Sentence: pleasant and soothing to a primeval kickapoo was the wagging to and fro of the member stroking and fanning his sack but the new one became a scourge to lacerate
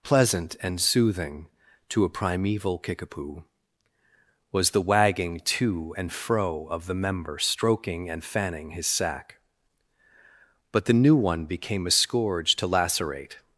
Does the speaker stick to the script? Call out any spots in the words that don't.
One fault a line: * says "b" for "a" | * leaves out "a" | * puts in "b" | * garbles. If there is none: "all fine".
all fine